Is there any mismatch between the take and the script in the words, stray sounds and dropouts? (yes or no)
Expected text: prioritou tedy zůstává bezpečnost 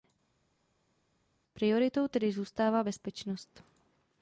no